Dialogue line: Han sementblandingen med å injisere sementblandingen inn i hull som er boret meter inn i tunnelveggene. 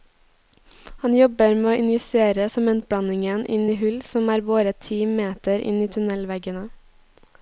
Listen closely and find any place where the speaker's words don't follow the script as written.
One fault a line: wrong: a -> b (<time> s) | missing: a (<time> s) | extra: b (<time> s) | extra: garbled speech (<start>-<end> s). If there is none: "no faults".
wrong: sementblandingen -> jobber (1.2 s)
extra: ti (4.9 s)